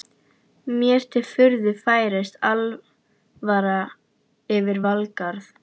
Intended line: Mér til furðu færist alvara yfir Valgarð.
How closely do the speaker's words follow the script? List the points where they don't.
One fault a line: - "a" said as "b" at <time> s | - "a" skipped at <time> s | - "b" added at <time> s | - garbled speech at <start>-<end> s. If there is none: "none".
none